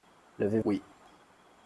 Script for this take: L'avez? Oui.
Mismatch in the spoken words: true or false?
false